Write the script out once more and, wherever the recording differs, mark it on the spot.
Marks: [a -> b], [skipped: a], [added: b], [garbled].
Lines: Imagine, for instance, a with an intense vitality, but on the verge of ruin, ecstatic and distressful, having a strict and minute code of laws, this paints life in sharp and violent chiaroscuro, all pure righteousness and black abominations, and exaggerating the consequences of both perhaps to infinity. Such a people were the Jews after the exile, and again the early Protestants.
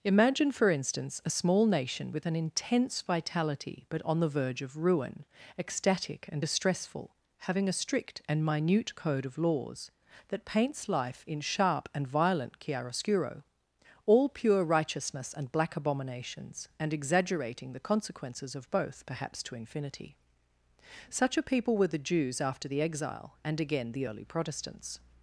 Imagine, for instance, a [added: small nation] with an intense vitality, but on the verge of ruin, ecstatic and distressful, having a strict and minute code of laws, [this -> that] paints life in sharp and violent chiaroscuro, all pure righteousness and black abominations, and exaggerating the consequences of both perhaps to infinity. Such a people were the Jews after the exile, and again the early Protestants.